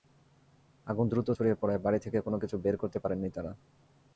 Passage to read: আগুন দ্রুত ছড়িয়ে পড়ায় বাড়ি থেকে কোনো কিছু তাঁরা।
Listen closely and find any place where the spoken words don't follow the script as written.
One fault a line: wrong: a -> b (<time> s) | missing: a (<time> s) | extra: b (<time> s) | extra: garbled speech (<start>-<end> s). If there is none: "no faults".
extra: বের করতে পারেননি (2.6 s)